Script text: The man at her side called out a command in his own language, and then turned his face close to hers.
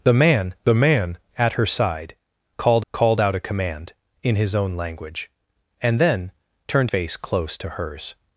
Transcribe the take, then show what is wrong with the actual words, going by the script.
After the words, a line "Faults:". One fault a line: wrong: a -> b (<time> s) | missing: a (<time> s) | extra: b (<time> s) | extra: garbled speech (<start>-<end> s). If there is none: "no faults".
The man the man at her side called called out a command in his own language, and then turned face close to hers.
Faults:
extra: the man (0.6 s)
extra: called (2.9 s)
missing: his (6.9 s)